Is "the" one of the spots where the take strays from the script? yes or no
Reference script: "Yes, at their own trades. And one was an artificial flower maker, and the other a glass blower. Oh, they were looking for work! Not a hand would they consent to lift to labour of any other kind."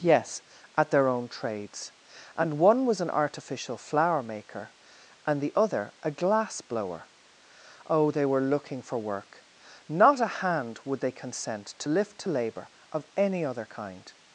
no